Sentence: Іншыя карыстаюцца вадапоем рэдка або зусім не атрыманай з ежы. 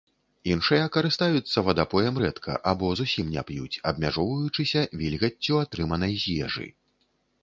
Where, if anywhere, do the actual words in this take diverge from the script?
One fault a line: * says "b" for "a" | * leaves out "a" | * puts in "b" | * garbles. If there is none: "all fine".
* puts in "п'юць абмяжоўваючыся вільгаццю"